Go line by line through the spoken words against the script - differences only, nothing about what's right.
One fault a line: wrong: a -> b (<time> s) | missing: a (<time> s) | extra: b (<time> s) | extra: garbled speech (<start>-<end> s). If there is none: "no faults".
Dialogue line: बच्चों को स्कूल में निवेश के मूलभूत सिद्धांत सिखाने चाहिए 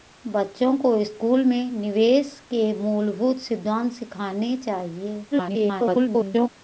extra: garbled speech (5.3-6.5 s)